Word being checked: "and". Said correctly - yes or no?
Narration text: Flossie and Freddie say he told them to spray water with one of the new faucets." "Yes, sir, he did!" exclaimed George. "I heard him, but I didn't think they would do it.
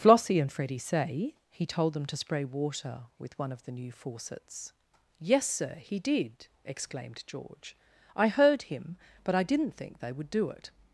yes